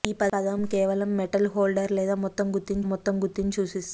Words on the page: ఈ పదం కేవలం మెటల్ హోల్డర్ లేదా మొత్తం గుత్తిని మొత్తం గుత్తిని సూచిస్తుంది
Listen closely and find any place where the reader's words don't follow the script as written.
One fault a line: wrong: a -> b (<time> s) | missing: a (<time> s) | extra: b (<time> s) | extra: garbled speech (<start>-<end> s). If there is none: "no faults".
no faults